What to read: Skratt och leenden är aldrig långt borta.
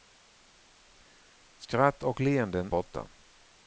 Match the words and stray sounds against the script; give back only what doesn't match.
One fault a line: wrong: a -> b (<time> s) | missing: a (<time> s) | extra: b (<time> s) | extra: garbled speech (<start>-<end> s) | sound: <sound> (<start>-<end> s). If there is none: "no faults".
missing: är aldrig långt (2.7 s)